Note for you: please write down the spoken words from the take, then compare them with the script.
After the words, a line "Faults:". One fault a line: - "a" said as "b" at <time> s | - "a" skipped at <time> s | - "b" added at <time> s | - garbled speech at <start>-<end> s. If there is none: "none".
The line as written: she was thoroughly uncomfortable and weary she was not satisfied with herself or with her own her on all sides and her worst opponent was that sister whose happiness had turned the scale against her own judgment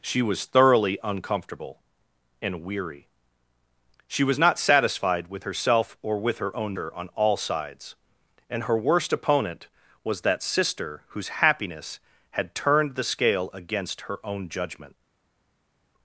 she was thoroughly uncomfortable and weary she was not satisfied with herself or with her own her on all sides and her worst opponent was that sister whose happiness had turned the scale against her own judgment
Faults:
none